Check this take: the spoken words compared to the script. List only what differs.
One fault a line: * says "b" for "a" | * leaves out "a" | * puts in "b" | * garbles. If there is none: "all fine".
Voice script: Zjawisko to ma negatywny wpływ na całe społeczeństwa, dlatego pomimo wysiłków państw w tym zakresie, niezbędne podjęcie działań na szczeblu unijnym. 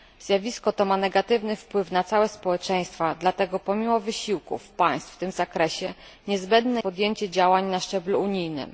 all fine